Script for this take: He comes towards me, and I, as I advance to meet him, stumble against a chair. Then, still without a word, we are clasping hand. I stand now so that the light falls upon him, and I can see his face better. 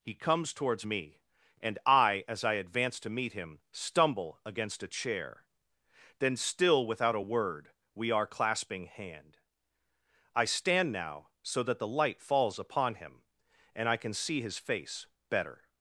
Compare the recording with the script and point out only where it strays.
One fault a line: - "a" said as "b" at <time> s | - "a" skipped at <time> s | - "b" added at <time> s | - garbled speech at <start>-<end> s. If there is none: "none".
none